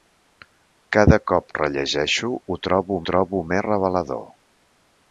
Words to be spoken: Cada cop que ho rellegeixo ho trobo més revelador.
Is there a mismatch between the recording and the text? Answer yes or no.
yes